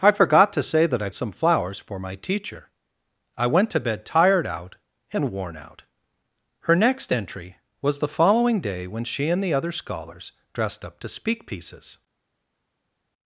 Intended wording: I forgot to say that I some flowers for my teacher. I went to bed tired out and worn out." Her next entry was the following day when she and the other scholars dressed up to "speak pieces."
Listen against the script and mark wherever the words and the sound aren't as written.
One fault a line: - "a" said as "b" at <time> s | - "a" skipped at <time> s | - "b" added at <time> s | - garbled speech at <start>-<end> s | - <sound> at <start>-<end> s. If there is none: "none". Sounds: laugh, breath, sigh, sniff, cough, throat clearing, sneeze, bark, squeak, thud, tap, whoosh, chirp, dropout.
none